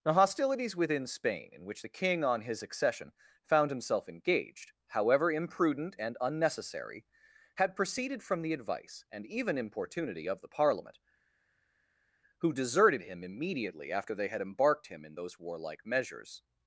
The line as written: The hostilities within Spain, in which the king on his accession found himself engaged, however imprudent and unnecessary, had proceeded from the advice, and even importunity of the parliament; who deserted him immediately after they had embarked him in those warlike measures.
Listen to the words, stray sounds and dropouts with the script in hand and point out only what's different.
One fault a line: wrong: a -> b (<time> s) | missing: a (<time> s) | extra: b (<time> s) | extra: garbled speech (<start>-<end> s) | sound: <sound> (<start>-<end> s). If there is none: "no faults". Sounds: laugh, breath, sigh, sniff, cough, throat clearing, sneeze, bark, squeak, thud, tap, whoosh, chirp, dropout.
no faults